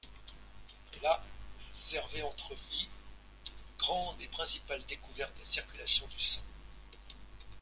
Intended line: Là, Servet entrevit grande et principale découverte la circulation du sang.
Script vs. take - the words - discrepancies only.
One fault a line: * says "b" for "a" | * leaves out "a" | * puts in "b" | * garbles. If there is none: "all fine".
all fine